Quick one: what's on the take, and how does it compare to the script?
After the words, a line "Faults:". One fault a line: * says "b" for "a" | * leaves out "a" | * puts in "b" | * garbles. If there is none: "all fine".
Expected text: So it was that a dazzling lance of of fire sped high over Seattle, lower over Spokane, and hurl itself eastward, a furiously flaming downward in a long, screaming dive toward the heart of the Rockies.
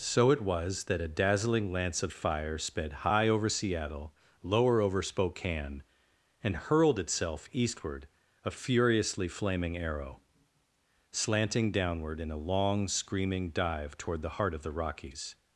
So it was that a dazzling lance of fire sped high over Seattle, lower over Spokane, and hurled itself eastward, a furiously flaming arrow; slanting downward in a long, screaming dive toward the heart of the Rockies.
Faults:
* leaves out "of"
* says "hurled" for "hurl"
* puts in "arrow slanting"